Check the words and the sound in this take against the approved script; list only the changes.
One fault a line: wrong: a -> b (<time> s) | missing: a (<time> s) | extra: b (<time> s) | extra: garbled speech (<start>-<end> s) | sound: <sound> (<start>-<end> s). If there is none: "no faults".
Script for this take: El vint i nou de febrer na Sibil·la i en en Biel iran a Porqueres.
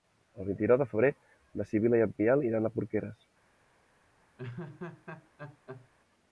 sound: laugh (4.4-5.9 s)